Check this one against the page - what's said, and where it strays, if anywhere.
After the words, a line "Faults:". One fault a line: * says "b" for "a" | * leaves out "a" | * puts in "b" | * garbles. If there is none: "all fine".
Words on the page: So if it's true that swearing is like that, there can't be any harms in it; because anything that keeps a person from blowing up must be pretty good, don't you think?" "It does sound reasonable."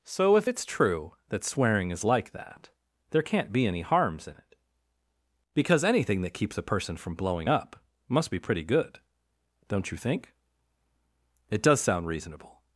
So if it's true that swearing is like that, there can't be any harms in it; because anything that keeps a person from blowing up must be pretty good, don't you think?" "It does sound reasonable."
Faults:
all fine